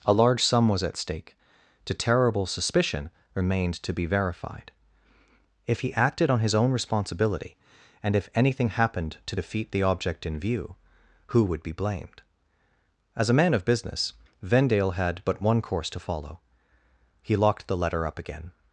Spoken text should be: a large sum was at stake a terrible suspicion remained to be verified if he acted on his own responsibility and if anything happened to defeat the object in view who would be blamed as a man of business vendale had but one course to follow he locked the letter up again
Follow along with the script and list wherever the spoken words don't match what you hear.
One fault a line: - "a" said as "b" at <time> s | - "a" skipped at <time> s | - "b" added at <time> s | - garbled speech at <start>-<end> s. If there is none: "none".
- "a" said as "to" at 1.9 s